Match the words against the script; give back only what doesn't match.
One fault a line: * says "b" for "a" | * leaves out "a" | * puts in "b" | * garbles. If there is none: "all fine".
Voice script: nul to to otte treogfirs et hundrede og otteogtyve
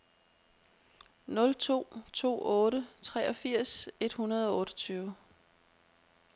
all fine